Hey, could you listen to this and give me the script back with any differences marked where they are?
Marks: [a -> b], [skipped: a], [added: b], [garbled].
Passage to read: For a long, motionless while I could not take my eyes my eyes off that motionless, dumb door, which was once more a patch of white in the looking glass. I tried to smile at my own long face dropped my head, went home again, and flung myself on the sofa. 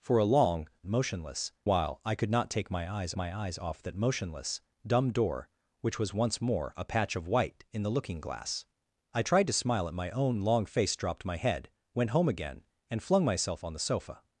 For a long, motionless while I could not take my eyes my eyes off that motionless, dumb door, which was once more a patch of white in the looking glass. I tried to smile at my own long face dropped my head, went home again, and flung myself on the sofa.